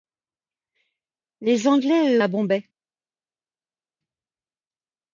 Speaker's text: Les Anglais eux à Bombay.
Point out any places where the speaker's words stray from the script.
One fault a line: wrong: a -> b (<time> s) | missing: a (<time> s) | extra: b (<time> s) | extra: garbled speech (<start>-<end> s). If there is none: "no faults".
no faults